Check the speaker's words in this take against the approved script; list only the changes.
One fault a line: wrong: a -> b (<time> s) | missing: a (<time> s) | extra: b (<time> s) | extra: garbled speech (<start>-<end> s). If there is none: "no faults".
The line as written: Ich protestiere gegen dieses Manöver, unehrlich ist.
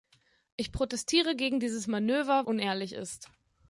no faults